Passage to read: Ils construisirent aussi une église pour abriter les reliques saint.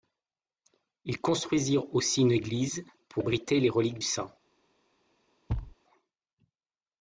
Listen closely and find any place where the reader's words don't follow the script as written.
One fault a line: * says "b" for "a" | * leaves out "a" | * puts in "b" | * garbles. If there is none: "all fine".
all fine